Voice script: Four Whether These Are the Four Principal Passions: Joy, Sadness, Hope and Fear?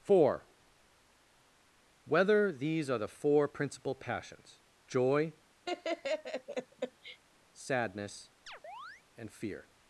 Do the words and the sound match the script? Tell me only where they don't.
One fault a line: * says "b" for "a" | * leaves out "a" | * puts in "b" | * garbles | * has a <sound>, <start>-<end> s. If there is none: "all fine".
* has a laugh, 5.6-7.2 s
* leaves out "Hope"
* has a chirp, 8.5-9.0 s